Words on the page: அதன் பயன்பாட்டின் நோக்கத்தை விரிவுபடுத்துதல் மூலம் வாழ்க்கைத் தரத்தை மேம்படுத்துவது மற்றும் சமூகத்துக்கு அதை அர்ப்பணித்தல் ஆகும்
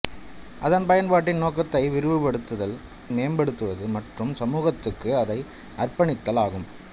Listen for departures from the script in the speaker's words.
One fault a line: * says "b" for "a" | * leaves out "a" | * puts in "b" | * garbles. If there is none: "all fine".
* leaves out "மூலம் வாழ்க்கைத் தரத்தை"